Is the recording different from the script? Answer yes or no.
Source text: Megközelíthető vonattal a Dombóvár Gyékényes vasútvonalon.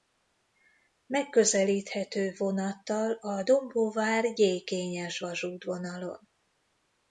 no